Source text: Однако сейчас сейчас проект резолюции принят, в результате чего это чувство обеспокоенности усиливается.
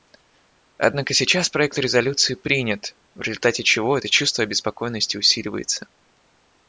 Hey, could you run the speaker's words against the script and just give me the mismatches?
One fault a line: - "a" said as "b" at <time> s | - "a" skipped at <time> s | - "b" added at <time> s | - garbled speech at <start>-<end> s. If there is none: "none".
- "сейчас" skipped at 1.5 s